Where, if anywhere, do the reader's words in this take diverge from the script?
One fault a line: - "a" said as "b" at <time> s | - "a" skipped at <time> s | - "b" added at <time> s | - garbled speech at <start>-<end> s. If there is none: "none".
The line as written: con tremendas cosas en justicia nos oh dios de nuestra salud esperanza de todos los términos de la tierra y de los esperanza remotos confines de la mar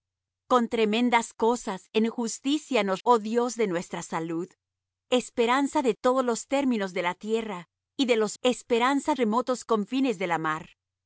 none